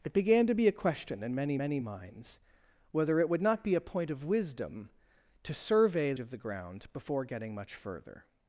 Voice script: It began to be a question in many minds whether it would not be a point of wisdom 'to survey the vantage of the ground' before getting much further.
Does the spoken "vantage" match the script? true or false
false